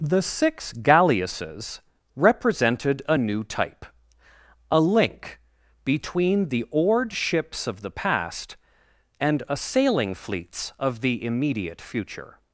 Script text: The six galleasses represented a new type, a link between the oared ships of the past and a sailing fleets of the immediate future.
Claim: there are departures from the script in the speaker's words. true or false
false